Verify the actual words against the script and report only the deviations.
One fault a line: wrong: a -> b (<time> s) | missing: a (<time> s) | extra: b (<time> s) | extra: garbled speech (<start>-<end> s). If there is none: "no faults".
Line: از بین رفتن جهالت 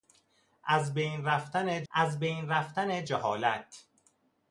extra: از بین رفتن (1.9 s)